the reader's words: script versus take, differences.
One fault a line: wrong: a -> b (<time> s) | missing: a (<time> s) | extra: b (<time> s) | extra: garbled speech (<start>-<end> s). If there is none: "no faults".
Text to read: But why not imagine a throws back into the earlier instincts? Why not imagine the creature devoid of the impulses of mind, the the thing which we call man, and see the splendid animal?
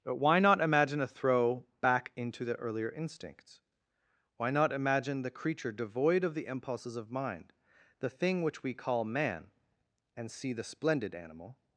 wrong: throws -> throw (1.1 s)
missing: the (8.1 s)